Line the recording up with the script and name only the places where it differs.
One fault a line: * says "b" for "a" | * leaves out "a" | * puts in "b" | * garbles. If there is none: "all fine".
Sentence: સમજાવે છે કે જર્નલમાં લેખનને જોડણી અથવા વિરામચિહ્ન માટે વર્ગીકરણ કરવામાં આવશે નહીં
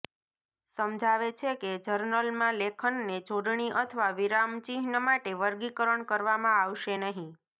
all fine